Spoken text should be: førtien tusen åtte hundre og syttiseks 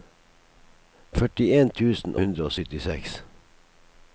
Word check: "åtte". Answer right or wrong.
wrong